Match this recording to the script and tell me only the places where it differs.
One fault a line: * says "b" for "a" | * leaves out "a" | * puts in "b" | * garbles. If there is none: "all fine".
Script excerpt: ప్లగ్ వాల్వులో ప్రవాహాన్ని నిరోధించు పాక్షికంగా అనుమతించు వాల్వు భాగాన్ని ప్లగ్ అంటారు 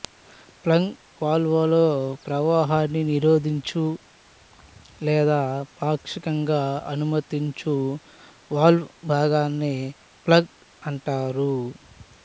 * puts in "లేదా"